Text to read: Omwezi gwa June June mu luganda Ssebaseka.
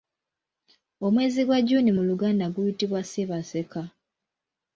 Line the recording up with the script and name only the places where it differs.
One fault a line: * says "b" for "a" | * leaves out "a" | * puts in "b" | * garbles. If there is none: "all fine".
* leaves out "June"
* puts in "guyitibwa"